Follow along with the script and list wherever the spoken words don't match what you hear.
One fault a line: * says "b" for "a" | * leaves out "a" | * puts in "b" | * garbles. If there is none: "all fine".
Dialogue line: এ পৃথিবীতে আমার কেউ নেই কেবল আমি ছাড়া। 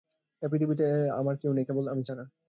all fine